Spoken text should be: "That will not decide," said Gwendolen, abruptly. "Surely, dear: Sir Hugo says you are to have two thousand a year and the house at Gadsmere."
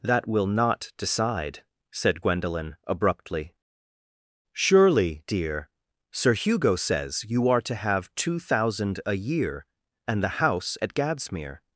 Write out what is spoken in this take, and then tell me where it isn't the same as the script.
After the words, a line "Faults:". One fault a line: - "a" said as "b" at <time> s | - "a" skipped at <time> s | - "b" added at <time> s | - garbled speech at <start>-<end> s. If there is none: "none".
"That will not decide," said Gwendolen, abruptly. "Surely, dear: Sir Hugo says you are to have two thousand a year and the house at Gadsmere."
Faults:
none